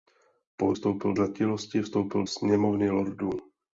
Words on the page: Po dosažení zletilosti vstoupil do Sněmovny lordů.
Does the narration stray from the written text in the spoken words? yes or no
yes